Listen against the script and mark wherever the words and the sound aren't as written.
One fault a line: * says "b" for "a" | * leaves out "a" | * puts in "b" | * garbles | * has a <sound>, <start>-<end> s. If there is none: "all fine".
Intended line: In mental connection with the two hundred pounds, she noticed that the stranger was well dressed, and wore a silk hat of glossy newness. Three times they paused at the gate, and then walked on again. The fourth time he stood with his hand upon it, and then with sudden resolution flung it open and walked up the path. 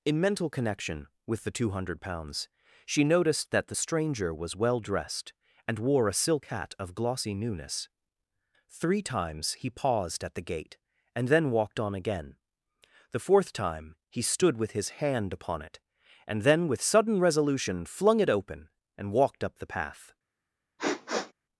* says "he" for "they"
* has a sniff, 20.8-21.3 s